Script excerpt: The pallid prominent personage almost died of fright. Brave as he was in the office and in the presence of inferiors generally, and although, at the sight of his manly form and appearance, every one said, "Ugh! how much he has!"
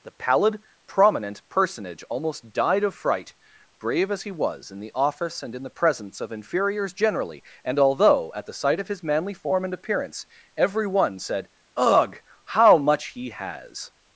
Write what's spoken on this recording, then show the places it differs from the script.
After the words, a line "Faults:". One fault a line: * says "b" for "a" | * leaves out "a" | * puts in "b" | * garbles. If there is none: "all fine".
The pallid prominent personage almost died of fright. Brave as he was in the office and in the presence of inferiors generally, and although, at the sight of his manly form and appearance, every one said, "Ugh! how much he has!"
Faults:
all fine